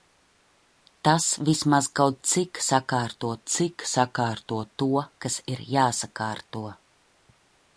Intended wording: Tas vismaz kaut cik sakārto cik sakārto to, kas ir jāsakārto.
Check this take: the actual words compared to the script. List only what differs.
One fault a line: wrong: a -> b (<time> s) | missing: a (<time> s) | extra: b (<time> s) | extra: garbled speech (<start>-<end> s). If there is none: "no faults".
no faults